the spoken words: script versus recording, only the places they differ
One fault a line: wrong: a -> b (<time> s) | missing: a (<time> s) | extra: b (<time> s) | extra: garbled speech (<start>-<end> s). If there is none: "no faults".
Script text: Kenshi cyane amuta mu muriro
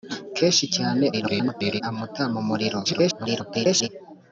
extra: garbled speech (1.1-1.8 s)
extra: garbled speech (2.8-3.9 s)